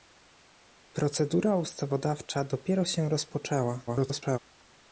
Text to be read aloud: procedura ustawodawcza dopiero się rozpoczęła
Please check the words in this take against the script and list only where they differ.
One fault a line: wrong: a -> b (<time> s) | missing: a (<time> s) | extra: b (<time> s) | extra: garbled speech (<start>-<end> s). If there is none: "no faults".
extra: garbled speech (3.9-4.4 s)